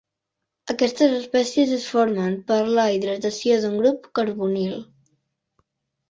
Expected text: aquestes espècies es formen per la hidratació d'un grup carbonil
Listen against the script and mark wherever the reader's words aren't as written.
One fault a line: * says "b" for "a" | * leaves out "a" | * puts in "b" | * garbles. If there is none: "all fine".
all fine